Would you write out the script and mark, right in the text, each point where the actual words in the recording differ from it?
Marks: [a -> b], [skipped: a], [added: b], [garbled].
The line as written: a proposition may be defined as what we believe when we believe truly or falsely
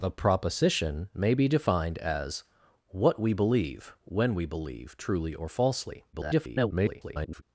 a proposition may be defined as what we believe when we believe truly or falsely [garbled]